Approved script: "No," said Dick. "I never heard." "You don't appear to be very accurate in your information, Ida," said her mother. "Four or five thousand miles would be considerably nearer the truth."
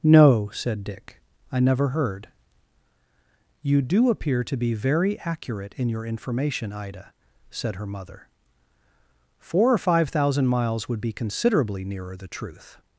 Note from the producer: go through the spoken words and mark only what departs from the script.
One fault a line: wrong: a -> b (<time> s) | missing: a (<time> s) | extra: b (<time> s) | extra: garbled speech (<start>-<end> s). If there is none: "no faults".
wrong: don't -> do (3.8 s)